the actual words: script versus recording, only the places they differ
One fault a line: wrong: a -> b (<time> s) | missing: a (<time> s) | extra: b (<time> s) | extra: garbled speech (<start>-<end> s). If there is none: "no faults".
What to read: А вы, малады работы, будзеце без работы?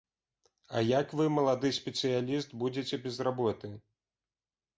extra: як (1.0 s)
wrong: работы -> спецыяліст (1.8 s)